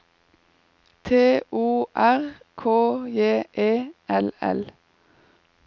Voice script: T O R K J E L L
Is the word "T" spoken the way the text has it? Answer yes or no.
yes